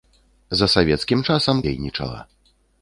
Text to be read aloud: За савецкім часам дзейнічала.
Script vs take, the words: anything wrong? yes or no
no